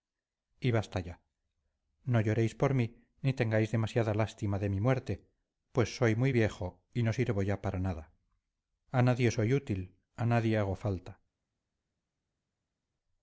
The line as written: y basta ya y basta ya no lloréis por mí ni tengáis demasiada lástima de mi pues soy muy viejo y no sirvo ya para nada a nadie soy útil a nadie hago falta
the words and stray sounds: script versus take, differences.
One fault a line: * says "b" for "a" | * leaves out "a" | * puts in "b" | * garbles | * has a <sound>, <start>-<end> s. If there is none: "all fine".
* leaves out "y basta ya"
* puts in "muerte"